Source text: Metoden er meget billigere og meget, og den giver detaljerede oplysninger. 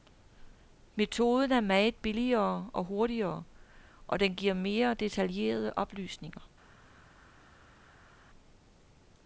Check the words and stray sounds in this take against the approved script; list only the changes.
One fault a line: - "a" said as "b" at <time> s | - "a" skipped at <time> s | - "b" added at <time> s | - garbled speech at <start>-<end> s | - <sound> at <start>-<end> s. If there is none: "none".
- "meget" said as "hurtigere" at 2.8 s
- "mere" added at 4.5 s